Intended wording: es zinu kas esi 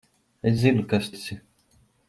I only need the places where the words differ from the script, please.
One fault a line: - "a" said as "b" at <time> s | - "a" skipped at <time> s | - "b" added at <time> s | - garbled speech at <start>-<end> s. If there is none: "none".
none